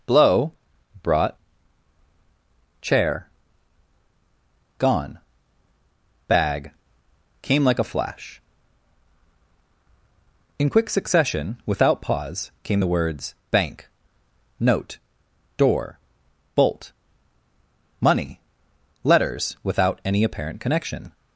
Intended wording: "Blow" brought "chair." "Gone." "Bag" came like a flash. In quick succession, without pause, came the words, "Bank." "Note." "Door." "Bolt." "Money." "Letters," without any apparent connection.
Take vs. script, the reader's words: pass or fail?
pass